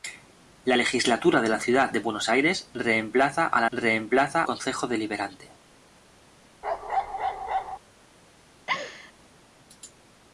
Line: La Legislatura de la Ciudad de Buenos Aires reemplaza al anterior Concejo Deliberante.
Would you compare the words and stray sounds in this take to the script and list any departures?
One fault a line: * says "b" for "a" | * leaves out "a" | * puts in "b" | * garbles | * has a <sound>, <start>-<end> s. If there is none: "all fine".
* says "reemplaza" for "anterior"
* has a bark, 6.6-7.8 s
* has a laugh, 8.7-9.1 s